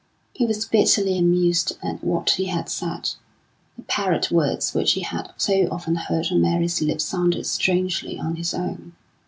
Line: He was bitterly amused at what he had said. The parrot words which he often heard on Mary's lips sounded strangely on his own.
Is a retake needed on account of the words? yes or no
yes